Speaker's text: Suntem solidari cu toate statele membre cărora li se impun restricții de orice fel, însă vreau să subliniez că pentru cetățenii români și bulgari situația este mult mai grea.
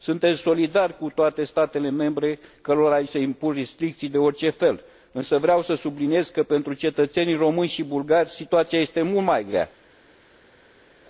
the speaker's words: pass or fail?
pass